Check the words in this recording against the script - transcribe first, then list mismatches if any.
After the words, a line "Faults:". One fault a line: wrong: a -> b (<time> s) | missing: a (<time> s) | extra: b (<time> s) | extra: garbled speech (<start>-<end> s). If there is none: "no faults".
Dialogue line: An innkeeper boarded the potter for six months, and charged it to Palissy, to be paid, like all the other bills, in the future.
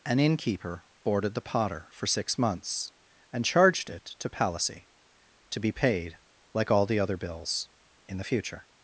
An innkeeper boarded the potter for six months, and charged it to Palissy, to be paid, like all the other bills, in the future.
Faults:
no faults